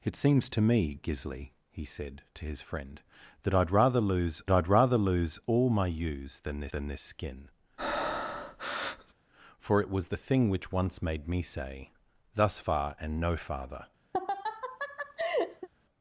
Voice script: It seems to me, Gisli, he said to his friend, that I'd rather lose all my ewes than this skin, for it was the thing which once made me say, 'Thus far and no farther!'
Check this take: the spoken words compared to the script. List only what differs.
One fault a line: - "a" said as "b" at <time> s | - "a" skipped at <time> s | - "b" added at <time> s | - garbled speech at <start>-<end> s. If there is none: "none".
- "I'd rather lose" added at 4.5 s
- "than this" added at 6.7 s